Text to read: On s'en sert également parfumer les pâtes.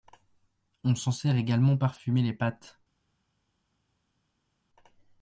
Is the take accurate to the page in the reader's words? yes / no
yes